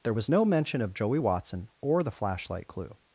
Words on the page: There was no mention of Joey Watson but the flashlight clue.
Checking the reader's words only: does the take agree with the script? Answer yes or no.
no